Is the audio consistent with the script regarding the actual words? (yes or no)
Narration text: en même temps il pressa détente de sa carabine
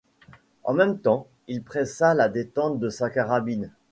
no